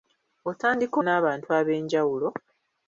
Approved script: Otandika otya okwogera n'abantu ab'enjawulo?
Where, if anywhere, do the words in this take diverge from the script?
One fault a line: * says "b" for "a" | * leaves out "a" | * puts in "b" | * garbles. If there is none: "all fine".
* leaves out "otya okwogera"